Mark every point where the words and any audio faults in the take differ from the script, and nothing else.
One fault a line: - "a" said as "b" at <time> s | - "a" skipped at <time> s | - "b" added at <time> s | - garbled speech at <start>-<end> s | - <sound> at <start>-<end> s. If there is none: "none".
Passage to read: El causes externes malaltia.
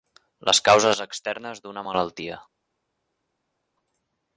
- "El" said as "Les" at 0.5 s
- "d'una" added at 1.7 s